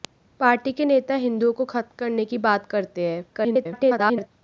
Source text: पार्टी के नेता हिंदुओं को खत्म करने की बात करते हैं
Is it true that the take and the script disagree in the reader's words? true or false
true